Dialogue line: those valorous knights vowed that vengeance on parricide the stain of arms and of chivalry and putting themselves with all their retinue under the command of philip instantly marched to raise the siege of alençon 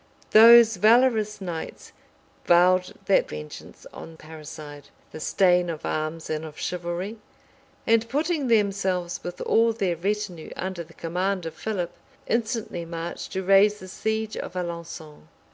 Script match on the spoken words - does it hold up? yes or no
yes